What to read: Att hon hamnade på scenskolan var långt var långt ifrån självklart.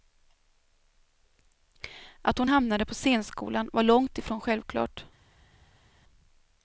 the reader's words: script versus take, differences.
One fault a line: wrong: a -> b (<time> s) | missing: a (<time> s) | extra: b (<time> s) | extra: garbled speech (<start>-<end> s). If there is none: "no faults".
missing: var långt (4.2 s)